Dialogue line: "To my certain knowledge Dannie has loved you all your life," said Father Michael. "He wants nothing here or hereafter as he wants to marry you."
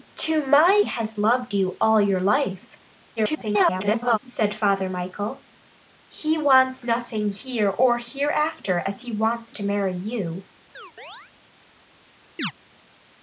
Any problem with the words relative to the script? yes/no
yes